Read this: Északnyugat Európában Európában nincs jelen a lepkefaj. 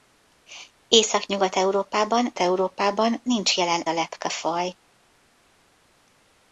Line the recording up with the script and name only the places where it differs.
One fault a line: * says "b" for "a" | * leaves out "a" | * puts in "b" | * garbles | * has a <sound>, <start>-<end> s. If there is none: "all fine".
all fine